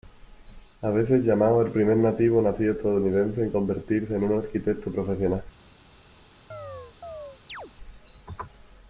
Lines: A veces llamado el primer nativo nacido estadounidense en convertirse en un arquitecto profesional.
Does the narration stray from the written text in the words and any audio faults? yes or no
yes